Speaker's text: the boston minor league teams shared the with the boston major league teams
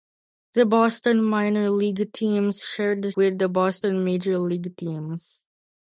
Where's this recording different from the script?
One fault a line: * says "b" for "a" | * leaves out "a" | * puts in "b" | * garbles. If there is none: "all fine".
all fine